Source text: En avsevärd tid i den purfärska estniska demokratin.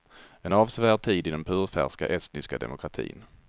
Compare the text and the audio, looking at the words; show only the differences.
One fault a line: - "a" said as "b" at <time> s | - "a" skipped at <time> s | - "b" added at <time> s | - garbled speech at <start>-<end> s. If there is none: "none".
none